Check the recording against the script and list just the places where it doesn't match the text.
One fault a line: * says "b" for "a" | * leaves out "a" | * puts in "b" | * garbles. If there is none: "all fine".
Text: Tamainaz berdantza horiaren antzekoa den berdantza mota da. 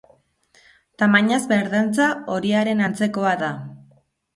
* leaves out "den berdantza mota"